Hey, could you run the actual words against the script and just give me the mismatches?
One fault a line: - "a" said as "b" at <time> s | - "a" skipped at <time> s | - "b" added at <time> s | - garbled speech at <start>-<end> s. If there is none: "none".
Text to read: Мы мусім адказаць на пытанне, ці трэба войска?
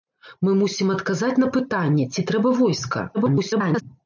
- garbled speech at 3.1-3.8 s